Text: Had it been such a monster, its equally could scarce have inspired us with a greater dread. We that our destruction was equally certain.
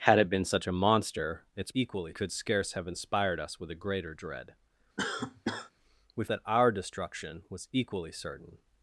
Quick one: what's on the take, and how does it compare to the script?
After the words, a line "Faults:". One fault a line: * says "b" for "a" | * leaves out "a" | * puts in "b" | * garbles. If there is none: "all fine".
Had it been such a monster, its equally could scarce have inspired us with a greater dread. We that our destruction was equally certain.
Faults:
all fine